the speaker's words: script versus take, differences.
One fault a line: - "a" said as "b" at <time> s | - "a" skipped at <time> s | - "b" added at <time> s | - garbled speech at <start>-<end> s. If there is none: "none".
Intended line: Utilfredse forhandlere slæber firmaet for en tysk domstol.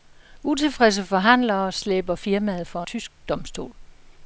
- "en" skipped at 2.8 s